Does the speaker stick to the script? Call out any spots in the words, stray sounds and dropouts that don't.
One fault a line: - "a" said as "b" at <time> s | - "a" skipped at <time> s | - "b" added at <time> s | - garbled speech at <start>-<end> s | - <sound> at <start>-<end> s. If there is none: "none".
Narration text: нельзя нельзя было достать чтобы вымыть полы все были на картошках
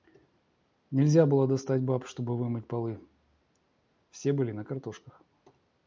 - "нельзя" skipped at 1.2 s
- "баб" added at 1.8 s